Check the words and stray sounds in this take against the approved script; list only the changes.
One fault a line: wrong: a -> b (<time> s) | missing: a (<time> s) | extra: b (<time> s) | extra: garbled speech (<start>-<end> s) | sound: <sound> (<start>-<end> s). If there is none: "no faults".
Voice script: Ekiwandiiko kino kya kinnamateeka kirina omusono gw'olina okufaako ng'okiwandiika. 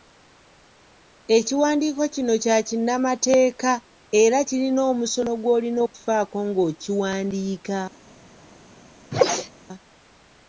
extra: era (4.2 s)
sound: sneeze (9.1-9.5 s)